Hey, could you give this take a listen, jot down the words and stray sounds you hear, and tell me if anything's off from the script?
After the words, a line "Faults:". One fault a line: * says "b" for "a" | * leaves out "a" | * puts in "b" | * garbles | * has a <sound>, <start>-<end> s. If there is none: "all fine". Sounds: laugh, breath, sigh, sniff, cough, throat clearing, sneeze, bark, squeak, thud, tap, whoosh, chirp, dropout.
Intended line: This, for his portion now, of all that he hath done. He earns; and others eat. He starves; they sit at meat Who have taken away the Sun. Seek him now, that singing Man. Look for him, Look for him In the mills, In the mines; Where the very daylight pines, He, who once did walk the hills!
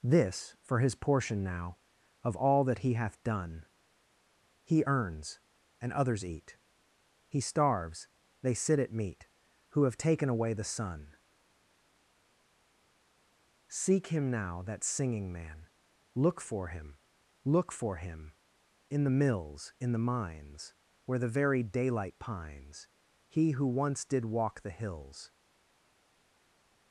This, for his portion now, of all that he hath done. He earns; and others eat. He starves; they sit at meat Who have taken away the Sun. Seek him now, that singing Man. Look for him, Look for him In the mills, In the mines; Where the very daylight pines, He, who once did walk the hills!
Faults:
all fine